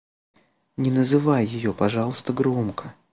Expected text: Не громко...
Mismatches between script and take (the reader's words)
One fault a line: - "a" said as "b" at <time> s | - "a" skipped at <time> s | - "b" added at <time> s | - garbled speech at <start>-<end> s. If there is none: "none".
- "называй ее пожалуйста" added at 0.9 s